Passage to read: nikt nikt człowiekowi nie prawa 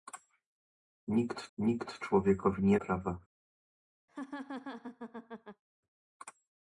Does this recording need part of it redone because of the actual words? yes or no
no